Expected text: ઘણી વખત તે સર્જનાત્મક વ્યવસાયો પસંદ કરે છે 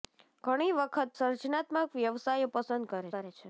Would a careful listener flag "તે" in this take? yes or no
yes